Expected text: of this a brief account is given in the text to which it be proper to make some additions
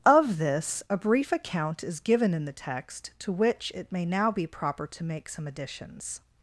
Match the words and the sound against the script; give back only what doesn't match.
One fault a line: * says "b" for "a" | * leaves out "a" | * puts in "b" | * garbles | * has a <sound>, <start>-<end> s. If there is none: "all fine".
* puts in "may now"